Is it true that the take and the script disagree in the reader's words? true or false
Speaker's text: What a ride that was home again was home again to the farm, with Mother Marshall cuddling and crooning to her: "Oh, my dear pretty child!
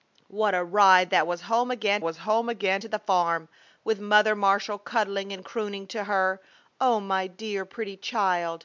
false